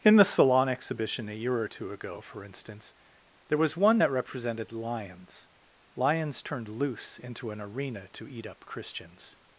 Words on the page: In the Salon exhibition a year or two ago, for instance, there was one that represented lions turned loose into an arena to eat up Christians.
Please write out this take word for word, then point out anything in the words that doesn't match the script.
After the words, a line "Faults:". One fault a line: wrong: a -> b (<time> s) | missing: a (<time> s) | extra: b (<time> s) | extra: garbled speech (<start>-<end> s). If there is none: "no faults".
In the Salon exhibition a year or two ago, for instance, there was one that represented lions lions turned loose into an arena to eat up Christians.
Faults:
extra: lions (6.0 s)